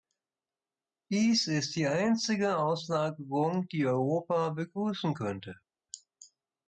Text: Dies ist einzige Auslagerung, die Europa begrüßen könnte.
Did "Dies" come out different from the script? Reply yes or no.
no